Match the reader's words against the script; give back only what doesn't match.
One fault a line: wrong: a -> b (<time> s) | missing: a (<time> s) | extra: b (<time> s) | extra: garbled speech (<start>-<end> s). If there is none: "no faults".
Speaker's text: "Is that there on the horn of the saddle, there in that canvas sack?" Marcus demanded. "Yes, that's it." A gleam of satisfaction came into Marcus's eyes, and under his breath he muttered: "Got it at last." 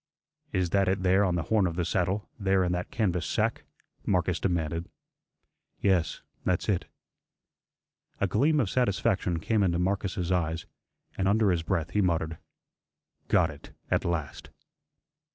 extra: it (0.9 s)